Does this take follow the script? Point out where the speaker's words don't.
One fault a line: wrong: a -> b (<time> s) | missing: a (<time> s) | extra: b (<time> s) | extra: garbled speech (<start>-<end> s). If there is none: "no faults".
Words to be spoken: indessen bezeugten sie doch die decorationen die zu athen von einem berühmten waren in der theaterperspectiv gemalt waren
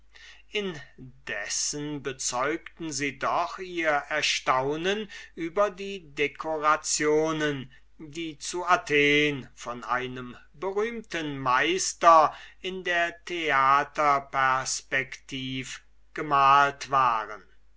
extra: ihr erstaunen über (3.6 s)
wrong: waren -> meister (11.4 s)